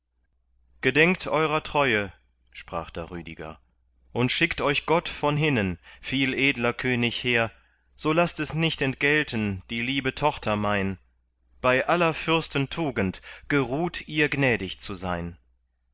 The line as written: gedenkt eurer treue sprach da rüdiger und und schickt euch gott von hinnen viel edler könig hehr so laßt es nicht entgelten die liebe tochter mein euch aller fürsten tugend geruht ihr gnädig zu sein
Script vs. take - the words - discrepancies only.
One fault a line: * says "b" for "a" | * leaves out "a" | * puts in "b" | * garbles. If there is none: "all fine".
* leaves out "und"
* says "bei" for "euch"